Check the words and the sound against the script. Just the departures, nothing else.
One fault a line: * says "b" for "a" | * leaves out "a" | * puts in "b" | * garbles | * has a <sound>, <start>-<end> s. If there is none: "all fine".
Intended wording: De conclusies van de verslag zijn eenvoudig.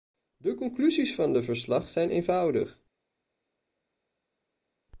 all fine